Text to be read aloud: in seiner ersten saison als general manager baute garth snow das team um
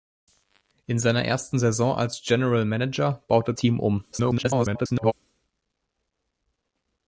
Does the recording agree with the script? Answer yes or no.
no